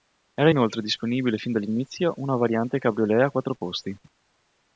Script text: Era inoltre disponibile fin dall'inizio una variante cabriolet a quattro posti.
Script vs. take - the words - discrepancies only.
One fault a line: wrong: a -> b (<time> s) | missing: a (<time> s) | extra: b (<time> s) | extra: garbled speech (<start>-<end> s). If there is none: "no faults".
no faults